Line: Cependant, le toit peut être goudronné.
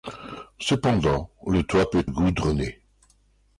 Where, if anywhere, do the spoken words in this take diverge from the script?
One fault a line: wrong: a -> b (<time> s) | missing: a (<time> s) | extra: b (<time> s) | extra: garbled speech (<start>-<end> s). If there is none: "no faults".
missing: être (2.1 s)